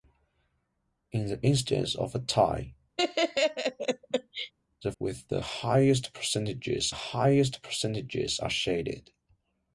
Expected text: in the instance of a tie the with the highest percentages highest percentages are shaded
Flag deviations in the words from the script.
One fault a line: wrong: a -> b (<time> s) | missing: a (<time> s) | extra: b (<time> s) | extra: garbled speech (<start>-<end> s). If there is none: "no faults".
no faults